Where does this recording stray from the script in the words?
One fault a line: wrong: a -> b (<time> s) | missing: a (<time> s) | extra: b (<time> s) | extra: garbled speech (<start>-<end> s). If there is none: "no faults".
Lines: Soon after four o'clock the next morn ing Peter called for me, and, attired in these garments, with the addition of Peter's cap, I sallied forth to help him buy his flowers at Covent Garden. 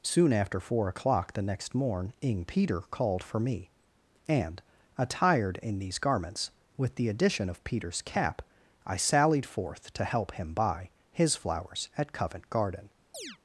no faults